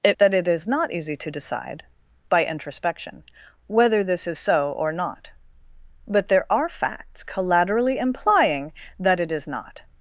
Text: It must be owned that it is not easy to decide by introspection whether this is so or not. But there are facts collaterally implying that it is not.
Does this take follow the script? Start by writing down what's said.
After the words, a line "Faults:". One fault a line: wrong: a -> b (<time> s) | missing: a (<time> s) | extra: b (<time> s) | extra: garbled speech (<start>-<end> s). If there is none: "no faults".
It that it is not easy to decide by introspection whether this is so or not. But there are facts collaterally implying that it is not.
Faults:
missing: must be owned (0.2 s)